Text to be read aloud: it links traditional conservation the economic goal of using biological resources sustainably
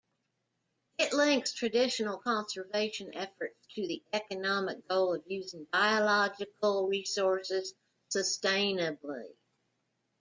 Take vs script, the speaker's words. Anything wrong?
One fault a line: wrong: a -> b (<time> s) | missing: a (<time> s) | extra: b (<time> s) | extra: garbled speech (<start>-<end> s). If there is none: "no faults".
extra: efforts to (3.1 s)